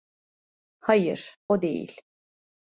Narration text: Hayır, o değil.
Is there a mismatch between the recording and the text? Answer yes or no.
no